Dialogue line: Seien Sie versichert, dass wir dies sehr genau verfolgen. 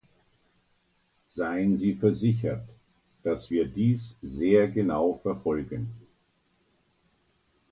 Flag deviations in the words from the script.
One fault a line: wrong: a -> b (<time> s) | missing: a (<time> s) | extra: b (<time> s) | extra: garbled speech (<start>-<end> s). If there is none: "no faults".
no faults